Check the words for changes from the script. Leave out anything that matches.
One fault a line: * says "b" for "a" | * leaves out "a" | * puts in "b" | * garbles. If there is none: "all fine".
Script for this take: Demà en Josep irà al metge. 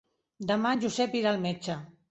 all fine